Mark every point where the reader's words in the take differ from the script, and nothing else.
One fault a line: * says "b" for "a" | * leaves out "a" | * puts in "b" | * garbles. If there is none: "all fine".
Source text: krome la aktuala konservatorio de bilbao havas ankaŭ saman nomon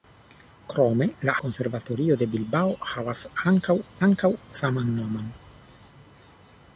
* leaves out "aktuala"
* puts in "ankaŭ"